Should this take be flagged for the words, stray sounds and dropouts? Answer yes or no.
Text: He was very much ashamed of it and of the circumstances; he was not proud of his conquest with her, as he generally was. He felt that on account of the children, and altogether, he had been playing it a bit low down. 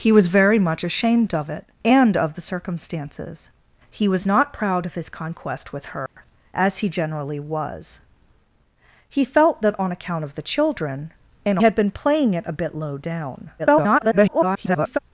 yes